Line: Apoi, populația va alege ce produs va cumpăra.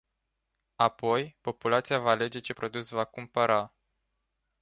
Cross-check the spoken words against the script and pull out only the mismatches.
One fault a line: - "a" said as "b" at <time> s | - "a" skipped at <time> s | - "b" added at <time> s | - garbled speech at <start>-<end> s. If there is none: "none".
none